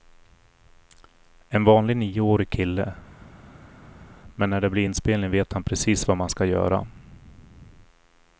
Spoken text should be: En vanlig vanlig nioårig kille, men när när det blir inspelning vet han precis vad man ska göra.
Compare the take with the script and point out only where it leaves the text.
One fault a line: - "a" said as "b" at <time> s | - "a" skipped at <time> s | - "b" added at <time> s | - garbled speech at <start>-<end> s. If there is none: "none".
- "vanlig" skipped at 2.0 s
- "när" skipped at 4.6 s